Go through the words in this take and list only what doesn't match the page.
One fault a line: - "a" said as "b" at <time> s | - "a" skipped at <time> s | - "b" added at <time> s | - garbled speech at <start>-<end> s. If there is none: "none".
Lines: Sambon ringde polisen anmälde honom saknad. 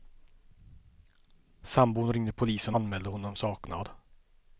none